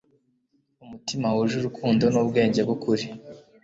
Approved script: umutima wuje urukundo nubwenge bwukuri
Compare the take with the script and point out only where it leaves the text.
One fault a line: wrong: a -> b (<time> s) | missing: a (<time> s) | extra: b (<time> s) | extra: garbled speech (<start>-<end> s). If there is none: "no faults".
no faults